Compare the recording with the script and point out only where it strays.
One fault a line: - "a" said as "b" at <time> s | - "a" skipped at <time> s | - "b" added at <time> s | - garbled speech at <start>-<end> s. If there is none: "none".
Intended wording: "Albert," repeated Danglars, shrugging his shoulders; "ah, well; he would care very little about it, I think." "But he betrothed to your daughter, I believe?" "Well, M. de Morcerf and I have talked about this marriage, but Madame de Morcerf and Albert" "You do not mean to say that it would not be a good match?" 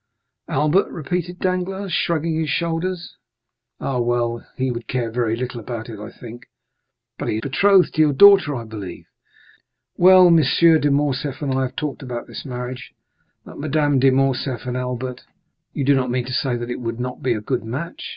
none